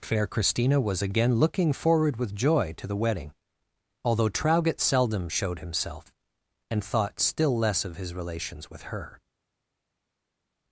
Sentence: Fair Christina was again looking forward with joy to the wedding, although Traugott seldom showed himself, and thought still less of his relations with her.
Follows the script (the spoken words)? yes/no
yes